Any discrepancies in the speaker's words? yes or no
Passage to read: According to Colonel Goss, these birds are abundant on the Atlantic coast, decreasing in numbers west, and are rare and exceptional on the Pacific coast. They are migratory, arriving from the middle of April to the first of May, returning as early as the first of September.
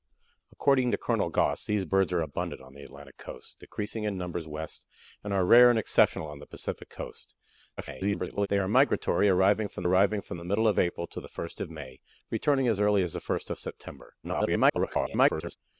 yes